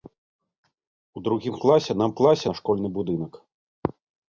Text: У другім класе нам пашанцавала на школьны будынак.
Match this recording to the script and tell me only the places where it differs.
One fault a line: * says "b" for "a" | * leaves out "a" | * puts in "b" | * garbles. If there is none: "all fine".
* says "класе" for "пашанцавала"